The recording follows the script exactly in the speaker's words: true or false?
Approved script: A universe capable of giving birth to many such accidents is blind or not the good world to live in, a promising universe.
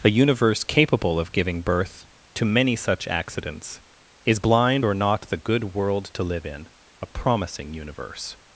true